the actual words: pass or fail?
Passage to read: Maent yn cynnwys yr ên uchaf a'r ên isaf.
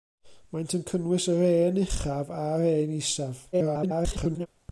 fail